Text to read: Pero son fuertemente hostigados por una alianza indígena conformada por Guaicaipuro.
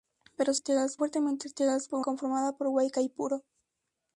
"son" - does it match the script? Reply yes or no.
no